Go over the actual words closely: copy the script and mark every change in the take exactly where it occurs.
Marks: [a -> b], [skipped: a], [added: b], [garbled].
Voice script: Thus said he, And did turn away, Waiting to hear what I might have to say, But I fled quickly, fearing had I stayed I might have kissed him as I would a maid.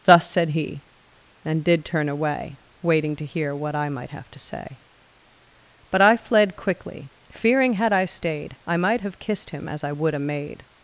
Thus said he, And did turn away, Waiting to hear what I might have to say, But I fled quickly, fearing had I stayed I might have kissed him as I would a maid.